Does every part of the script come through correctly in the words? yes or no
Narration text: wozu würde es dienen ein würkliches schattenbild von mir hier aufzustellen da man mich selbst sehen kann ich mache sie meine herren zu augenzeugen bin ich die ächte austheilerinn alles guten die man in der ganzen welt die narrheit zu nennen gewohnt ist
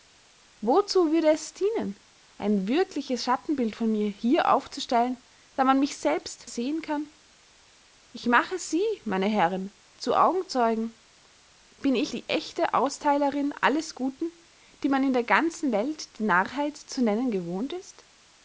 yes